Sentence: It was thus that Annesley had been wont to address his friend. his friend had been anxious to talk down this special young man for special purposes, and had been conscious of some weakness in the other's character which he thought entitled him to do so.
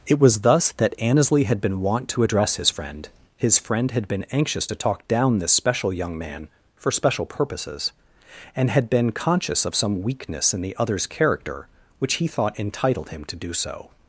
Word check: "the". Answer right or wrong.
right